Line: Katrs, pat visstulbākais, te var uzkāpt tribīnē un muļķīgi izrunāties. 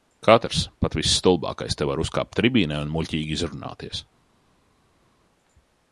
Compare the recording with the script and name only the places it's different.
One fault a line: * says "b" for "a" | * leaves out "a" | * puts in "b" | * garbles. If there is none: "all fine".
all fine